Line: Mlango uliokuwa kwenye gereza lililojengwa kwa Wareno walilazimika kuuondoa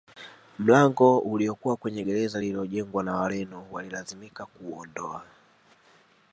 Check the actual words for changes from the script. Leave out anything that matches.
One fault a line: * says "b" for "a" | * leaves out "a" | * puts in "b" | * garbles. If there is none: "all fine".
* says "na" for "kwa"